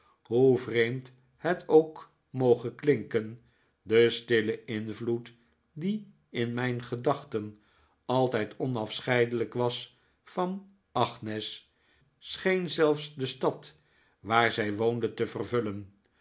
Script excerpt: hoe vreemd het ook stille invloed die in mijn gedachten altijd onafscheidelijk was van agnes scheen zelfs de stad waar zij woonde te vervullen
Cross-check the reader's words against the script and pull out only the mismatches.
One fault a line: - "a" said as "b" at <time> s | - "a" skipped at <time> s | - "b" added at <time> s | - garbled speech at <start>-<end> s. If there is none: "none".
- "moge klinken de" added at 2.3 s